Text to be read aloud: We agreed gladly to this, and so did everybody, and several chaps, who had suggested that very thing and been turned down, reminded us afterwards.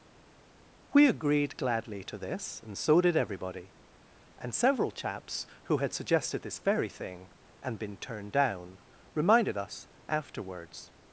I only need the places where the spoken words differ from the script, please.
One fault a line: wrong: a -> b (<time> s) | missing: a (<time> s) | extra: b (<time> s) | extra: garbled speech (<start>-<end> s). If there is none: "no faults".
wrong: that -> this (6.4 s)